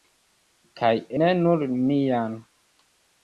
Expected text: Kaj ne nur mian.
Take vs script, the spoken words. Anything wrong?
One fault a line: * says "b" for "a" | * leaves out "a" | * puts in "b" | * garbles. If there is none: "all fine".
all fine